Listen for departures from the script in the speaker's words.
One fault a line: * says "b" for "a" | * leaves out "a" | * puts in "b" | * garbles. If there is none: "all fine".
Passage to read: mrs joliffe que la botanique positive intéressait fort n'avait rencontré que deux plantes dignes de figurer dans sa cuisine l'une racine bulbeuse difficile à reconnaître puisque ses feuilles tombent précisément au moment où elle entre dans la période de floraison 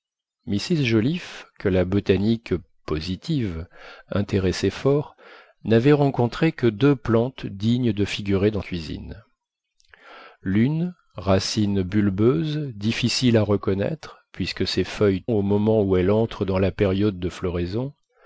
* leaves out "sa"
* leaves out "tombent précisément"